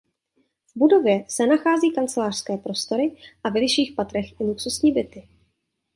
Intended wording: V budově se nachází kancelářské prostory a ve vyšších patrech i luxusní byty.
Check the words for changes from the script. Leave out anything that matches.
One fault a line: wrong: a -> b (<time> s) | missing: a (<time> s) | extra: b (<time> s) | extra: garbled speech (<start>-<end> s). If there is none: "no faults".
no faults